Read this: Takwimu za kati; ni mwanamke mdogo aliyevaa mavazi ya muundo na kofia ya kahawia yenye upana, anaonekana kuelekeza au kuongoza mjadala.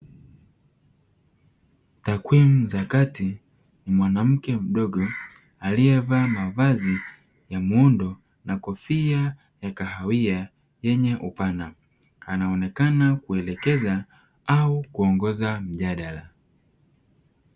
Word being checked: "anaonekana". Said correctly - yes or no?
yes